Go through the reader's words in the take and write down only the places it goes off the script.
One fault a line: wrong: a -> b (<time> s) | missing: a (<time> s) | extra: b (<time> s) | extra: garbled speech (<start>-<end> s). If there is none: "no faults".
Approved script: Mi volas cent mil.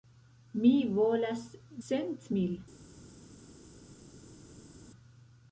no faults